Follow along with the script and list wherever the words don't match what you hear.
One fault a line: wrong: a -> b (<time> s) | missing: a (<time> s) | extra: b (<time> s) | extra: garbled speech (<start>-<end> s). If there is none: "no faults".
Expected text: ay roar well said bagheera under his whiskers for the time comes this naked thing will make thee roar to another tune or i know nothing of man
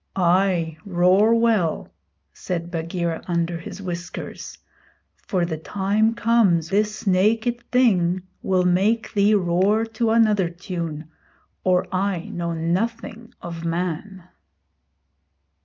no faults